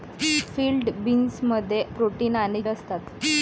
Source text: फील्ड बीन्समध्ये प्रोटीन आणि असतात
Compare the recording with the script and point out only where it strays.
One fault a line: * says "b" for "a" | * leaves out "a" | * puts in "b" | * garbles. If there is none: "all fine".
all fine